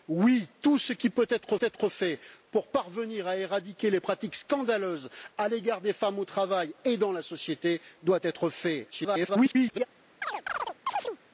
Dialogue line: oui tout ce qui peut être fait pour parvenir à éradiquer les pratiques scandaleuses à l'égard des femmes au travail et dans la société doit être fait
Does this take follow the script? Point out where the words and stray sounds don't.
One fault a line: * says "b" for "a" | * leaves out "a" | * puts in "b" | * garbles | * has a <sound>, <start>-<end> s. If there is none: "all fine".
* puts in "être"
* garbles
* has a chirp, 10.2-11.2 s